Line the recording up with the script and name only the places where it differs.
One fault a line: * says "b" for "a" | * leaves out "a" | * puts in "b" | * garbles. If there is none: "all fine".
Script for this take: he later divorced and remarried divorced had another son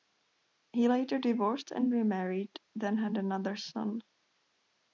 * says "then" for "divorced"